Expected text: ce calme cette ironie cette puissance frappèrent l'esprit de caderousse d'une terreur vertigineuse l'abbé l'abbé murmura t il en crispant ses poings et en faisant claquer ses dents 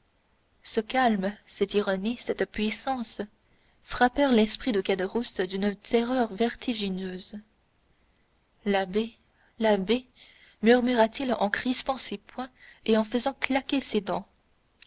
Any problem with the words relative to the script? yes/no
no